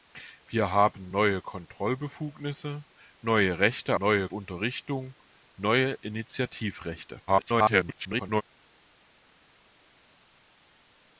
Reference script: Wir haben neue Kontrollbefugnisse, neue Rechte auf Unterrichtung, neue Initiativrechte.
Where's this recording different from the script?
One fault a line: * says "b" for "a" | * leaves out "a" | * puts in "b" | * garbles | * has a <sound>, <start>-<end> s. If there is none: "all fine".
* says "neue" for "auf"
* garbles